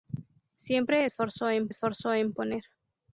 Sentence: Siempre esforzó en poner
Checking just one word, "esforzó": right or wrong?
right